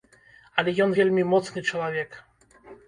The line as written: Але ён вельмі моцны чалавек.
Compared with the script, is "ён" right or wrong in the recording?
right